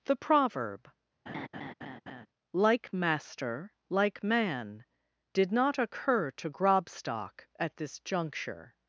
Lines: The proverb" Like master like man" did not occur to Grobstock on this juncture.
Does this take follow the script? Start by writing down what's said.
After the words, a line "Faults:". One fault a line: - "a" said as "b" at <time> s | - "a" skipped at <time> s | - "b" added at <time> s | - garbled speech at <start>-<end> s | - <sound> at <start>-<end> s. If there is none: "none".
The proverb" Like master like man" did not occur to Grobstock at this juncture.
Faults:
- laugh at 1.3-2.3 s
- "on" said as "at" at 7.6 s